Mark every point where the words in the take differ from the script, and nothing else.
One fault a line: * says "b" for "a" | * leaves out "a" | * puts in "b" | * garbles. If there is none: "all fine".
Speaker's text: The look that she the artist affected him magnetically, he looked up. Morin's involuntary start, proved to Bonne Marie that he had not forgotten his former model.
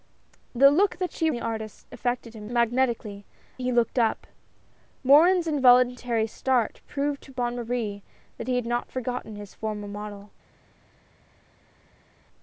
all fine